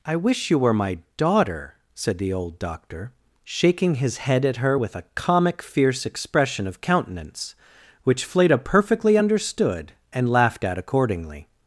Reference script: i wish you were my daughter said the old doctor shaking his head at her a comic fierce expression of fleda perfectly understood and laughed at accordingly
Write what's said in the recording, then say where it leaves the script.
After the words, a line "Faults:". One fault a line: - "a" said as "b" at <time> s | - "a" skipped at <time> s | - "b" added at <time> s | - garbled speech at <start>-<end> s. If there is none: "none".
i wish you were my daughter said the old doctor shaking his head at her with a comic fierce expression of countenance which fleda perfectly understood and laughed at accordingly
Faults:
- "with" added at 4.7 s
- "countenance which" added at 6.8 s